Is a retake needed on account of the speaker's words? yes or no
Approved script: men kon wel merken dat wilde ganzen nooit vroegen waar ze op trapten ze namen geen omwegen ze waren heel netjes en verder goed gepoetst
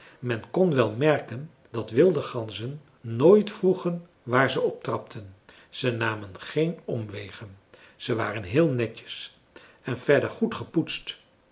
no